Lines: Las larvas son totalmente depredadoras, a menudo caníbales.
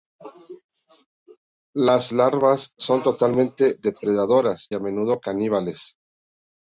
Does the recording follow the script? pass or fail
pass